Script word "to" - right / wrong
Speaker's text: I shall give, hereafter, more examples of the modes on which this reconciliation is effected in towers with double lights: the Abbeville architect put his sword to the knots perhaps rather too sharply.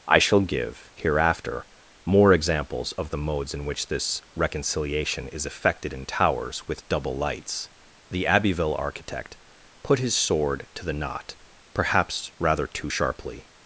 right